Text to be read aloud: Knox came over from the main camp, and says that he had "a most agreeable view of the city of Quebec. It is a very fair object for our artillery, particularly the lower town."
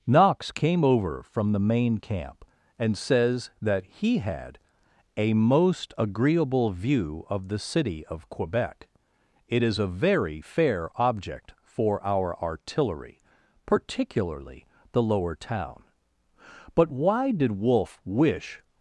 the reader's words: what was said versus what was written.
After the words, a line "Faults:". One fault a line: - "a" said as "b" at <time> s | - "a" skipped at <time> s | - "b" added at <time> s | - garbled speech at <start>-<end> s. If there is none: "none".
Knox came over from the main camp, and says that he had "a most agreeable view of the city of Quebec. It is a very fair object for our artillery, particularly the lower town." But why did Wolfe wish
Faults:
- "But why did Wolfe wish" added at 16.7 s